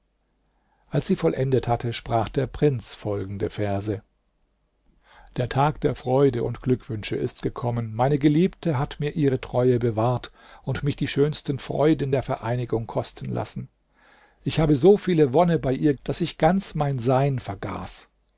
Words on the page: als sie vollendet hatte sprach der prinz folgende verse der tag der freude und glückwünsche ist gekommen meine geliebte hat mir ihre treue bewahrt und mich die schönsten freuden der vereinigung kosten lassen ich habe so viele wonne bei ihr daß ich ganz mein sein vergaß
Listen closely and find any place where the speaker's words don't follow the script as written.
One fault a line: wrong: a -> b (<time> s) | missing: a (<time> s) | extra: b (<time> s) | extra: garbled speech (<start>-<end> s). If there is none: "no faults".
no faults